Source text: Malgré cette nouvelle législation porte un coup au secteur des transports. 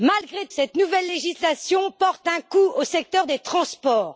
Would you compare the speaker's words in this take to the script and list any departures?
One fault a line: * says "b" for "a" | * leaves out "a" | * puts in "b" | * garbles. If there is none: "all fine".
all fine